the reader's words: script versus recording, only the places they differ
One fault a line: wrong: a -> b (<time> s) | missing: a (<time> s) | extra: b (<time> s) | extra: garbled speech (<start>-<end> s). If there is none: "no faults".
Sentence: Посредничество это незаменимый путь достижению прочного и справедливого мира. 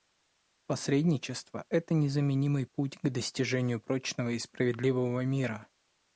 extra: к (3.0 s)